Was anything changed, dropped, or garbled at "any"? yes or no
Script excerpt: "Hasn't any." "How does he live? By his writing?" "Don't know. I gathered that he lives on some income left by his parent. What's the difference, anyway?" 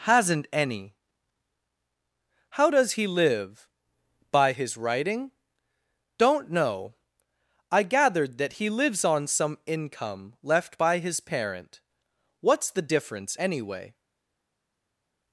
no